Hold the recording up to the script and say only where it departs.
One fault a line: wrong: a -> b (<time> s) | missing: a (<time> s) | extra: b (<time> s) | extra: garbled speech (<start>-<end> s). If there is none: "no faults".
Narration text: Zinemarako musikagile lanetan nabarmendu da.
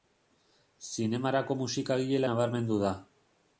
missing: lanetan (2.2 s)